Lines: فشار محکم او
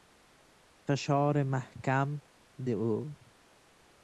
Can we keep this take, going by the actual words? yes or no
yes